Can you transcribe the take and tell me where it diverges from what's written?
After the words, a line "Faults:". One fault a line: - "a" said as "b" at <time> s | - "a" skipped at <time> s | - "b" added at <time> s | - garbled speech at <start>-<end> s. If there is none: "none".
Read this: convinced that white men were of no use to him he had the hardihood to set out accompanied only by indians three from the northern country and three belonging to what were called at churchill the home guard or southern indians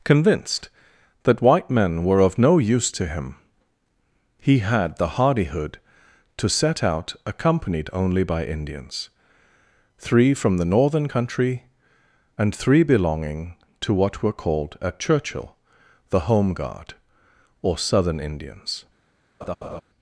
convinced that white men were of no use to him he had the hardihood to set out accompanied only by indians three from the northern country and three belonging to what were called at churchill the home guard or southern indians
Faults:
none